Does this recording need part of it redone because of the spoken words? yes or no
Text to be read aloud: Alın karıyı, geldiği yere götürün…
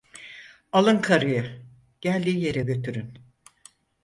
no